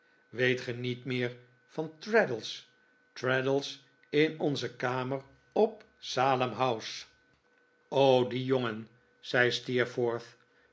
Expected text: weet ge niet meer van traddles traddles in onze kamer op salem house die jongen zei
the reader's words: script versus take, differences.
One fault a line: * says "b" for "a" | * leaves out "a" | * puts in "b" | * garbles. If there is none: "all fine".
all fine